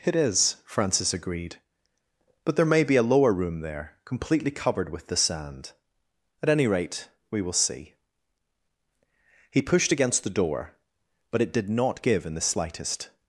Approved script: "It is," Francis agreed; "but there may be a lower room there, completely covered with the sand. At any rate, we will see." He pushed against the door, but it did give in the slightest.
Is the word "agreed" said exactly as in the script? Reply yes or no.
yes